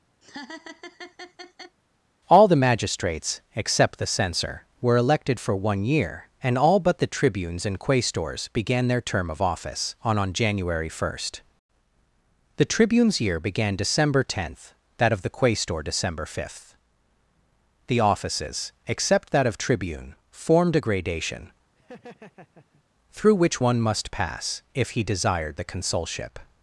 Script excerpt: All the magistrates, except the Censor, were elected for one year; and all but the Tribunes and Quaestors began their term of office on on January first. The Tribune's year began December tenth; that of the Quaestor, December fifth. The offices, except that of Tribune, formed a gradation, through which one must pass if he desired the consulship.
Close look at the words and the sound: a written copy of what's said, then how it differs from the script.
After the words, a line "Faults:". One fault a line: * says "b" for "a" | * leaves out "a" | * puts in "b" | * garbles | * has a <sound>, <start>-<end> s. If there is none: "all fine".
All the magistrates, except the Censor, were elected for one year; and all but the Tribunes and Quaestors began their term of office on on January first. The Tribune's year began December tenth; that of the Quaestor, December fifth. The offices, except that of Tribune, formed a gradation, through which one must pass if he desired the consulship.
Faults:
* has a laugh, 0.2-1.8 s
* has a laugh, 21.8-22.8 s